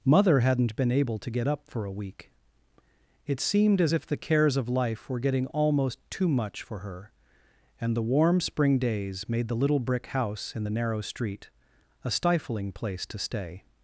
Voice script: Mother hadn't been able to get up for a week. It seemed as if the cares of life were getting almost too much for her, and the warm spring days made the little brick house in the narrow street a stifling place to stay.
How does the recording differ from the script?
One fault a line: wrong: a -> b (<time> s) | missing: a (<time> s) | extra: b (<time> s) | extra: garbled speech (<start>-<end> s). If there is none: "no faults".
no faults